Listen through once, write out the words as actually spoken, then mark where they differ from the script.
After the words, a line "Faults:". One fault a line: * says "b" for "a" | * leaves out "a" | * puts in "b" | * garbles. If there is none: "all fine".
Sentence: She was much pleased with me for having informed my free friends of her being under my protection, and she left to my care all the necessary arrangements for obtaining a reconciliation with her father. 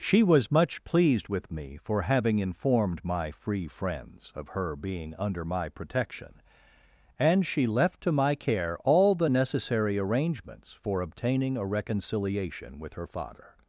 She was much pleased with me for having informed my free friends of her being under my protection, and she left to my care all the necessary arrangements for obtaining a reconciliation with her father.
Faults:
all fine